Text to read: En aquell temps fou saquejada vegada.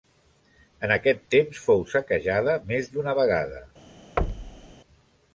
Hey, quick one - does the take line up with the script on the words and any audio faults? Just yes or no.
no